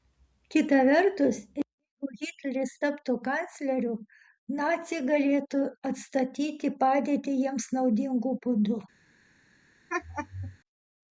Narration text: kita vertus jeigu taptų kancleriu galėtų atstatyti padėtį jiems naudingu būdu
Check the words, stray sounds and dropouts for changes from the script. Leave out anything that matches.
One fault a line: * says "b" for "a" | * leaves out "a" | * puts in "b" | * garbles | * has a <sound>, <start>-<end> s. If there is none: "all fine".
* puts in "hitleris"
* puts in "naciai"
* has a laugh, 9.9-10.6 s